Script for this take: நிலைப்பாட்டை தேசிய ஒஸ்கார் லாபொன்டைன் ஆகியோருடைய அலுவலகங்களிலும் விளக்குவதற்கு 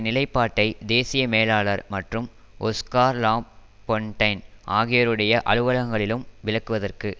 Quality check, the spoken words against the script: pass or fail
fail